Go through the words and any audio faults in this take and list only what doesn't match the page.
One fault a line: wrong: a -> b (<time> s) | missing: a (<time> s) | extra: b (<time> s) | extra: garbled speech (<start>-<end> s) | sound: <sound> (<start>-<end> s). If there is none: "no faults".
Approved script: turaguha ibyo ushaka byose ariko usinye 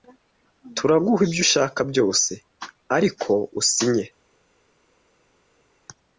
no faults